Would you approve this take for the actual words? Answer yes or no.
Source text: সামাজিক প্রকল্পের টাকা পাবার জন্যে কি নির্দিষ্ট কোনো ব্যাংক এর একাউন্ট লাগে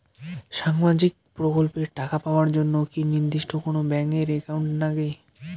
yes